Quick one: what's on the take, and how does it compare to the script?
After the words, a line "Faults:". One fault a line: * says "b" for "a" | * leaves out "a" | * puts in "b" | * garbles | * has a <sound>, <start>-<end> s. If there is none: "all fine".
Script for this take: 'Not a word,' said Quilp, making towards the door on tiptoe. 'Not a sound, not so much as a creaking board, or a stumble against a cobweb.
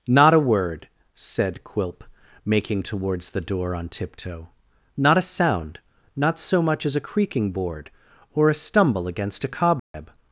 'Not a word,' said Quilp, making towards the door on tiptoe. 'Not a sound, not so much as a creaking board, or a stumble against a cobweb.
Faults:
* has a dropout, 9.8-9.9 s